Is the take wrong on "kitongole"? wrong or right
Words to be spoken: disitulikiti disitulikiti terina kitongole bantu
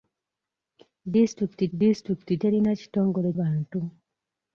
right